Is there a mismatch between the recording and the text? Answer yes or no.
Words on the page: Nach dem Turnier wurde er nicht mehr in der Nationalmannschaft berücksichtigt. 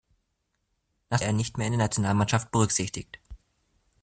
yes